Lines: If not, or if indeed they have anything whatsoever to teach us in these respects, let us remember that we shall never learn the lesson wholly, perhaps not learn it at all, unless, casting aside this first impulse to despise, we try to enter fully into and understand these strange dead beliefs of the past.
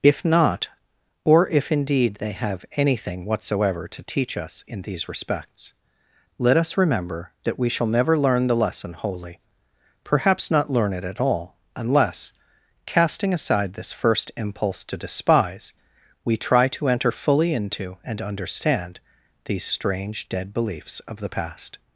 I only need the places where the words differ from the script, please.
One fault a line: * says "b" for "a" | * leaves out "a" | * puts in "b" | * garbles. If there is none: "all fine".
all fine